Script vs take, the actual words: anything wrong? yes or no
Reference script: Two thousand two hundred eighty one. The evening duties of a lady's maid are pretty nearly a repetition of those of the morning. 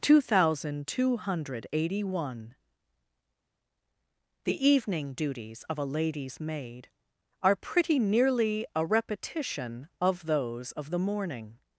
no